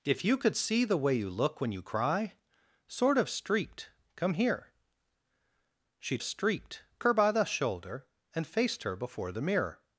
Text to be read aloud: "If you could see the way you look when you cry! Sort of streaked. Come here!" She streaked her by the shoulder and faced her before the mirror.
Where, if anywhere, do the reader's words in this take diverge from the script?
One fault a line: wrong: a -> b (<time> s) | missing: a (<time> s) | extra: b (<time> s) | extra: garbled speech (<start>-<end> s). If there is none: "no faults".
no faults